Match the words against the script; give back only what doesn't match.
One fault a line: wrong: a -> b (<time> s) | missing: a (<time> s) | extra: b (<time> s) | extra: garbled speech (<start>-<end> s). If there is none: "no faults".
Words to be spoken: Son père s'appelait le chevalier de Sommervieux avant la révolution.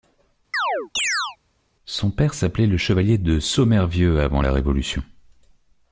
no faults